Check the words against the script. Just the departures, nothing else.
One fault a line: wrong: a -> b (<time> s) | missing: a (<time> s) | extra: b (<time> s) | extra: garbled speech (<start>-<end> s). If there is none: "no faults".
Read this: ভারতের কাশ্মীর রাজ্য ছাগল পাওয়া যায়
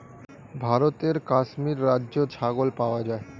no faults